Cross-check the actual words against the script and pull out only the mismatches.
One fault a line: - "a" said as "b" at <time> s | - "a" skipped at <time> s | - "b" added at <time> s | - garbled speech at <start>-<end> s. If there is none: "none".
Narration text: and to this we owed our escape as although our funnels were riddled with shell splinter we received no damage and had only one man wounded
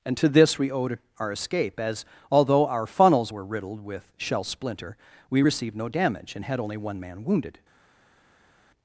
none